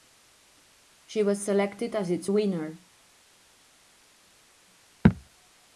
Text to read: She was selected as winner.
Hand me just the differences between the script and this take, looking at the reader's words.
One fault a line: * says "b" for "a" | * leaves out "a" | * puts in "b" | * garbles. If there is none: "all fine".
* puts in "its"